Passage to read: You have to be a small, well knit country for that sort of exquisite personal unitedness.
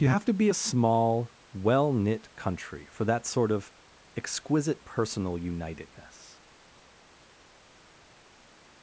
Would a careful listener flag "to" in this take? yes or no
no